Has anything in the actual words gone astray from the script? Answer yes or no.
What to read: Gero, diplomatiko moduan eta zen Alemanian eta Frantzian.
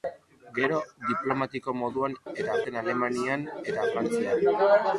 no